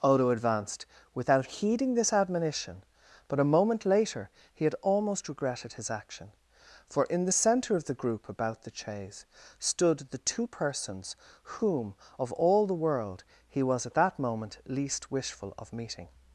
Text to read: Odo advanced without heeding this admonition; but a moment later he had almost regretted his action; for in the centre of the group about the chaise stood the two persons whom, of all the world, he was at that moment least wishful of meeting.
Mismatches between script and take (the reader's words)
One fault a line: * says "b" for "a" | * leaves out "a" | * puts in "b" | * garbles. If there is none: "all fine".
all fine